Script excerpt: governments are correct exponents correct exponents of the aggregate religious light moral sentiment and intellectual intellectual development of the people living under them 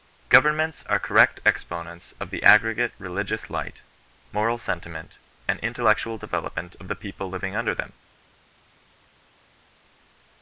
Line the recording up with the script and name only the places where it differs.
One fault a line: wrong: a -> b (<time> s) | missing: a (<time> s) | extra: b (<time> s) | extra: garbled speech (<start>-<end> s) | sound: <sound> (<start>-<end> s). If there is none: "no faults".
missing: correct exponents (2.1 s)
missing: intellectual (6.2 s)